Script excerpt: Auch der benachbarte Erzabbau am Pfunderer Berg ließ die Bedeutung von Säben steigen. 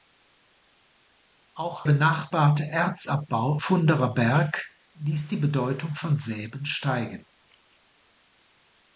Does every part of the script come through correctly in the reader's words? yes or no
no